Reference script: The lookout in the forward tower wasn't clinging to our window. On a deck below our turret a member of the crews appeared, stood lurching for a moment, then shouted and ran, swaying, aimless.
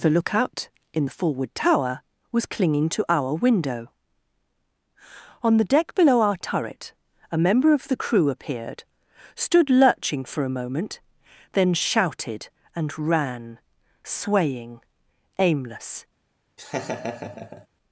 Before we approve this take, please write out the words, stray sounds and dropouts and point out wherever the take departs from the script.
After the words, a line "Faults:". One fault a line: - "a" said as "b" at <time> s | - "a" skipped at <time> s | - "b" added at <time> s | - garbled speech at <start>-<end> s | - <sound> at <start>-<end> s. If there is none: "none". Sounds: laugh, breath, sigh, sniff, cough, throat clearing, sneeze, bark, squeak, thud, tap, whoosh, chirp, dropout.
The lookout in the forward tower was clinging to our window. On the deck below our turret a member of the crew appeared, stood lurching for a moment, then shouted and ran, swaying, aimless.
Faults:
- "wasn't" said as "was" at 2.3 s
- "a" said as "the" at 5.6 s
- "crews" said as "crew" at 7.9 s
- laugh at 16.6-17.7 s